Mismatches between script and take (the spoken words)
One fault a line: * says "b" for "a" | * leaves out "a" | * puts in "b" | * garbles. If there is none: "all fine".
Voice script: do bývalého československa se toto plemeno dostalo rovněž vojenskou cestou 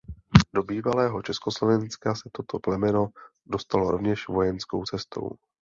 all fine